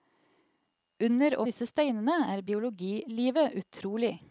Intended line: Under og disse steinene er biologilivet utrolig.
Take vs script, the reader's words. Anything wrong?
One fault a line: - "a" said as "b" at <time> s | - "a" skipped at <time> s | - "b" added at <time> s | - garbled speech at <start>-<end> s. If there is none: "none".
none